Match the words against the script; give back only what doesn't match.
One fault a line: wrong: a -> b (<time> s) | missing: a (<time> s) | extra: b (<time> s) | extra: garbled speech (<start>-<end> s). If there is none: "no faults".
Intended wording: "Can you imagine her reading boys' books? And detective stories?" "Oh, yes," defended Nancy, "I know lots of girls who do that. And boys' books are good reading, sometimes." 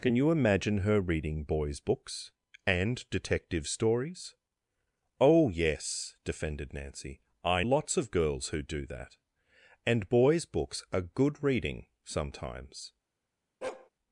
missing: know (7.6 s)